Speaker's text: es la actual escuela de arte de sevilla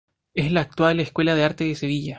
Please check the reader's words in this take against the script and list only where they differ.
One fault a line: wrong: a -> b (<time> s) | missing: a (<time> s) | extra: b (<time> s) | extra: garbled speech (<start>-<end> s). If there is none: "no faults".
no faults